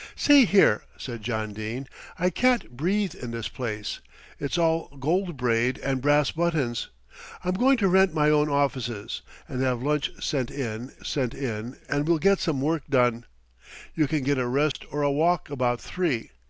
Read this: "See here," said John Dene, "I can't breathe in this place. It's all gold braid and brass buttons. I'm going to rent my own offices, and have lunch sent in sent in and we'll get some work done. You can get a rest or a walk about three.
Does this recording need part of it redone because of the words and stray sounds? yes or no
yes